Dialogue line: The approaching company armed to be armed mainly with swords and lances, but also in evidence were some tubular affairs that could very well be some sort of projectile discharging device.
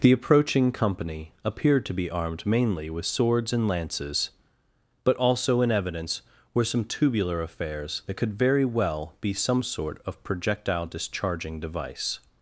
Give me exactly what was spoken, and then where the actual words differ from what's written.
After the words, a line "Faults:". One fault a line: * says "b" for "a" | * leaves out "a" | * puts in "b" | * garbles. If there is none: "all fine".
The approaching company appeared to be armed mainly with swords and lances, but also in evidence were some tubular affairs that could very well be some sort of projectile discharging device.
Faults:
* says "appeared" for "armed"